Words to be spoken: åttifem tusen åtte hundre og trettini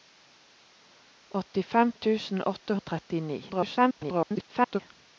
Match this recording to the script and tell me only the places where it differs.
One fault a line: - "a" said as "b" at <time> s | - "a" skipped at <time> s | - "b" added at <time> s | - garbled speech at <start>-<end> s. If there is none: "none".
- "hundre" skipped at 2.8 s
- garbled speech at 3.5-4.8 s